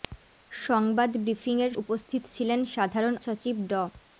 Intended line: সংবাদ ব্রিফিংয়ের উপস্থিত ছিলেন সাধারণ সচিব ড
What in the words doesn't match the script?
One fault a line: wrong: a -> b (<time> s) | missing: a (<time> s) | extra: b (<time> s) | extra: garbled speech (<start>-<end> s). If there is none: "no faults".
no faults